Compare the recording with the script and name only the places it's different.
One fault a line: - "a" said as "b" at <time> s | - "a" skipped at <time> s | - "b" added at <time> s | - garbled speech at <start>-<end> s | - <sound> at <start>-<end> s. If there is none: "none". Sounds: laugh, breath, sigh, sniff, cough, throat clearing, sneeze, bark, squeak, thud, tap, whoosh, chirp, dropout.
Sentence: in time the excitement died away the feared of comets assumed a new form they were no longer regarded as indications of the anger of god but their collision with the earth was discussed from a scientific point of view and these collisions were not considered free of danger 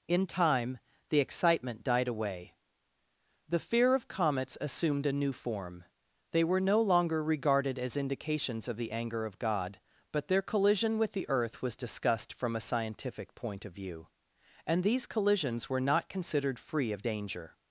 - "feared" said as "fear" at 3.6 s